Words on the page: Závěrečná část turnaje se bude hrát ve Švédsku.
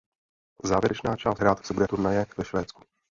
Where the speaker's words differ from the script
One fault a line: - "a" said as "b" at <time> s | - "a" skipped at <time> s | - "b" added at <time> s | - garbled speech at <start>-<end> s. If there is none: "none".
- "turnaje" said as "hrát" at 1.4 s
- "hrát" said as "turnaje" at 1.9 s